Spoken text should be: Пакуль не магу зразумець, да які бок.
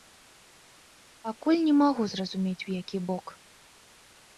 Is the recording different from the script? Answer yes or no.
yes